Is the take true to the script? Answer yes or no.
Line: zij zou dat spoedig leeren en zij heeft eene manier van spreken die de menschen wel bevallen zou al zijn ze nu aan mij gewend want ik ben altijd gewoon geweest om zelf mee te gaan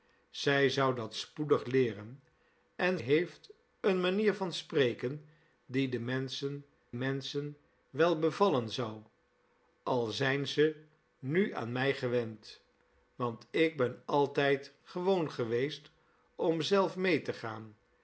no